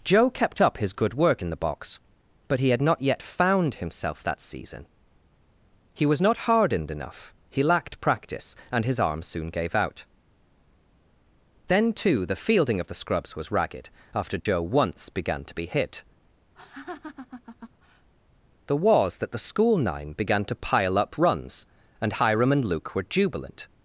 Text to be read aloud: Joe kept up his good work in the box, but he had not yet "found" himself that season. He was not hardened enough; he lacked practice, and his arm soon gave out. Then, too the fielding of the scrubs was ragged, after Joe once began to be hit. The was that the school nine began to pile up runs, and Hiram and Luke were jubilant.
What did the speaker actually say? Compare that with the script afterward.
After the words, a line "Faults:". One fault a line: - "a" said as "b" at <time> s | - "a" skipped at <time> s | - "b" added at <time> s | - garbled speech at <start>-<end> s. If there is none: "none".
Joe kept up his good work in the box, but he had not yet "found" himself that season. He was not hardened enough; he lacked practice, and his arm soon gave out. Then, too the fielding of the scrubs was ragged, after Joe once began to be hit. The was that the school nine began to pile up runs, and Hiram and Luke were jubilant.
Faults:
none